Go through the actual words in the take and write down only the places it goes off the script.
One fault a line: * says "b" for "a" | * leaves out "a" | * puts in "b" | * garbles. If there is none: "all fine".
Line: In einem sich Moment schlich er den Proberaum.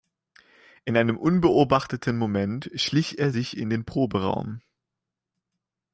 * says "unbeobachteten" for "sich"
* puts in "sich in"